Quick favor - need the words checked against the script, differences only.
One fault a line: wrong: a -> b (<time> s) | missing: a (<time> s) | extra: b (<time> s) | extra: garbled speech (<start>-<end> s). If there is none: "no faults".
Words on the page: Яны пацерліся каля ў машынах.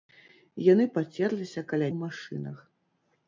no faults